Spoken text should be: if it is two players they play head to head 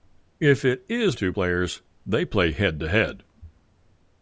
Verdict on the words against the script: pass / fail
pass